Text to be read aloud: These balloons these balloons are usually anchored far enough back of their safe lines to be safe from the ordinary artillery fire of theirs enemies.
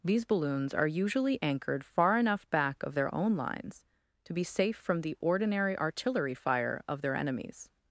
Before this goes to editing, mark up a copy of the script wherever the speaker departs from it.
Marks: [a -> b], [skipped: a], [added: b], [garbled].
These balloons [skipped: these balloons] are usually anchored far enough back of their [safe -> own] lines to be safe from the ordinary artillery fire of [theirs -> their] enemies.